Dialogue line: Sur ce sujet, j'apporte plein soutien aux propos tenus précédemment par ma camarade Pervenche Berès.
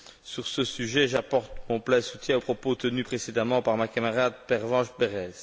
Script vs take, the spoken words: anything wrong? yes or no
yes